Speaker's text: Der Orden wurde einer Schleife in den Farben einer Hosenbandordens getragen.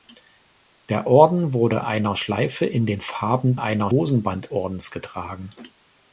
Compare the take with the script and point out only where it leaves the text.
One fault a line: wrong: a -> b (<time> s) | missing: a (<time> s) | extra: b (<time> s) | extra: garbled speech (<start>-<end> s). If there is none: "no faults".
no faults